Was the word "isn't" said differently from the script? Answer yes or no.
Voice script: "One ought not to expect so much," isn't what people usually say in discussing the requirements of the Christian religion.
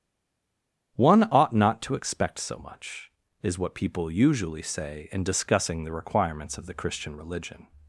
yes